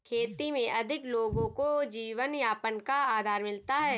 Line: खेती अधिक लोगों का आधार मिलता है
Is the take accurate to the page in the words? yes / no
no